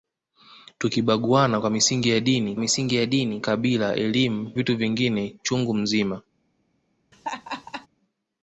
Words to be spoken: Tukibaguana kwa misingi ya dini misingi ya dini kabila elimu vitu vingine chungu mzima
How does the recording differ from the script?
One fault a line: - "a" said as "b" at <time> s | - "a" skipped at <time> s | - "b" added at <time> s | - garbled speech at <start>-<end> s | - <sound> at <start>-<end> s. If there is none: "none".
- laugh at 7.1-7.9 s